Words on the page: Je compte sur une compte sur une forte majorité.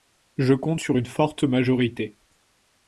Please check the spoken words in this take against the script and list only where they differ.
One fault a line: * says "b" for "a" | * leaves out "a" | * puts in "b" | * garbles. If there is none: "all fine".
* leaves out "compte sur une"